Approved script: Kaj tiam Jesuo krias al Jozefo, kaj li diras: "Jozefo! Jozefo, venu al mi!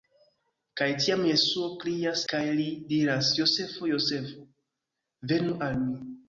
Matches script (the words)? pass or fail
fail